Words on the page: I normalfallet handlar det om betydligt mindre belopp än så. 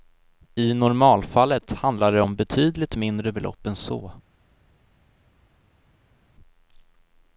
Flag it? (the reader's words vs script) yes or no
no